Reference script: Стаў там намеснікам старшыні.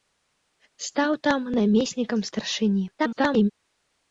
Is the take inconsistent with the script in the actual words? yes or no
yes